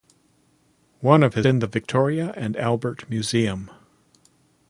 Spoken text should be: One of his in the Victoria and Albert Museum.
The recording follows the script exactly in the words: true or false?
true